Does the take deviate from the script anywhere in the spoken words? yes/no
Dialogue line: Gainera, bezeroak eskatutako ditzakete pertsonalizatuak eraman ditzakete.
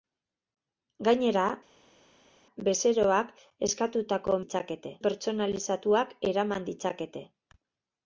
no